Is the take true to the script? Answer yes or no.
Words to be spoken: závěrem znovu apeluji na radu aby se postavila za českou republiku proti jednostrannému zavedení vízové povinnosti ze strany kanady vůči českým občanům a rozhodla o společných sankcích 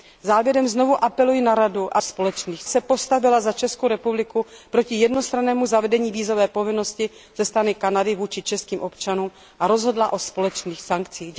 no